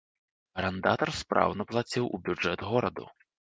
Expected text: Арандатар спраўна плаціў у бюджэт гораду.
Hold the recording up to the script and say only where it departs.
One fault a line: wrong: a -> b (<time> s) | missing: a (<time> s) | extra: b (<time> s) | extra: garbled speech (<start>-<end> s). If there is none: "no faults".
no faults